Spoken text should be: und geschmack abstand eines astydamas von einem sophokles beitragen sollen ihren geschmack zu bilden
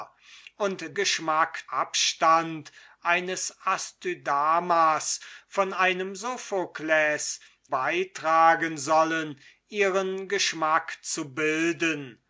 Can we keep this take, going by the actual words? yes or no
yes